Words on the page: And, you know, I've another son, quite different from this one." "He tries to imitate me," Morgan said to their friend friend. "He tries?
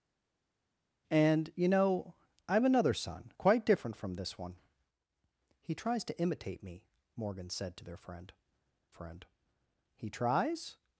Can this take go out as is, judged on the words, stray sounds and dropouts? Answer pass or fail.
pass